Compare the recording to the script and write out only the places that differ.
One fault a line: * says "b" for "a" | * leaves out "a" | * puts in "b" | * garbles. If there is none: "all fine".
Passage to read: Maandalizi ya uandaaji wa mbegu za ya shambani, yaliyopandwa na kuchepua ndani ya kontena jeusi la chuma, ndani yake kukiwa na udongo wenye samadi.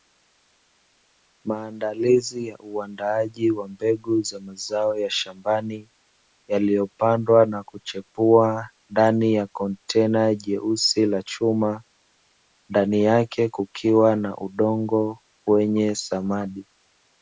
* puts in "mazao"